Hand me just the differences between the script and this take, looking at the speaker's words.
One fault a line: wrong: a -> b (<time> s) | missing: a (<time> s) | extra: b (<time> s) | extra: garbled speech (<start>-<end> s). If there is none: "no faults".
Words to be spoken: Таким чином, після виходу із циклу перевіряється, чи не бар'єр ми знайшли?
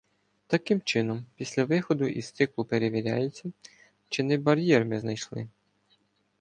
no faults